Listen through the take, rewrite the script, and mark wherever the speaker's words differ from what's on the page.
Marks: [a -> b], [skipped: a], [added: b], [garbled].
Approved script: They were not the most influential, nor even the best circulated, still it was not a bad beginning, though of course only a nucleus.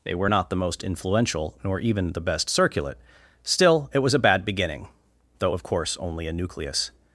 They were not the most influential, nor even the best [circulated, -> circulate] still it was [skipped: not] a bad beginning, though of course only a nucleus.